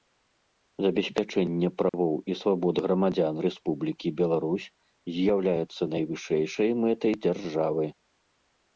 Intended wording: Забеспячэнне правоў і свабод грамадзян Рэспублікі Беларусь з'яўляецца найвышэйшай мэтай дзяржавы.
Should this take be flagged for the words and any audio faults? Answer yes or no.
yes